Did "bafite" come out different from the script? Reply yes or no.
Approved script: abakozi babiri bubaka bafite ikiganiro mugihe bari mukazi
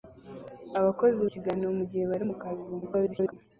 yes